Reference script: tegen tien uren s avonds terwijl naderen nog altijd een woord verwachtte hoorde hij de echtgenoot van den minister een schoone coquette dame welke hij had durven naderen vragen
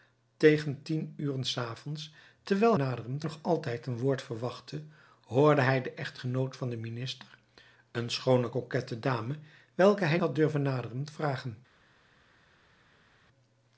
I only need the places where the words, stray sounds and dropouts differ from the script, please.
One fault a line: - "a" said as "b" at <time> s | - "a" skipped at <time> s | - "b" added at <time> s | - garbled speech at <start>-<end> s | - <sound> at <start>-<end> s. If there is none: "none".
none